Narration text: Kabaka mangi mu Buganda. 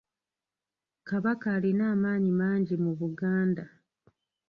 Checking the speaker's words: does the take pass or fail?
fail